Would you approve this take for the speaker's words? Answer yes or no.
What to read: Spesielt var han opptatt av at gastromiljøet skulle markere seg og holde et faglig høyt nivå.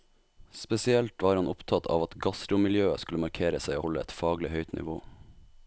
no